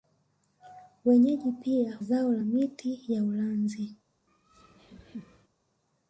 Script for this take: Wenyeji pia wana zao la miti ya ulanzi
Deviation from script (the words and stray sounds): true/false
true